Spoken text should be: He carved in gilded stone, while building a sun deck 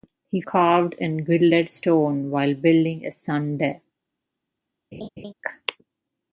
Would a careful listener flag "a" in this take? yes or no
no